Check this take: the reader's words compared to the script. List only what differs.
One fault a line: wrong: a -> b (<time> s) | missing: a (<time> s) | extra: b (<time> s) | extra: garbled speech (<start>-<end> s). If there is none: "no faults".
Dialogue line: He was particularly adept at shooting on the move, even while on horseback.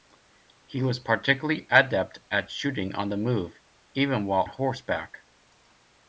missing: on (4.5 s)